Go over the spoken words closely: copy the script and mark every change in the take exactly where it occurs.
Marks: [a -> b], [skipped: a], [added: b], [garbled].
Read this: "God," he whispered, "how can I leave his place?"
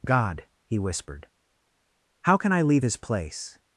"God," he whispered, "how can I leave his place?"